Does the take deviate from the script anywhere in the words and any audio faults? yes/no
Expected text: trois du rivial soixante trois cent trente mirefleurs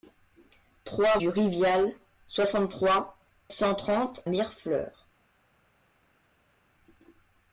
no